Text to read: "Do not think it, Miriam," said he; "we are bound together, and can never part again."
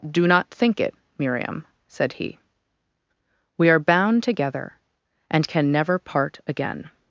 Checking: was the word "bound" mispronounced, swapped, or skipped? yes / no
no